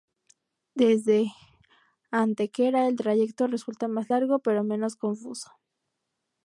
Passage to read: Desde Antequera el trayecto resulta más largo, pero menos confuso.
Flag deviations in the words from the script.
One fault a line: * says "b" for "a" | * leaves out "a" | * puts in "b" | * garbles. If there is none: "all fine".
all fine